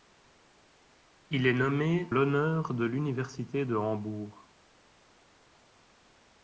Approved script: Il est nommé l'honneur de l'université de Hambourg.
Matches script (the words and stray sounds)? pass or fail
pass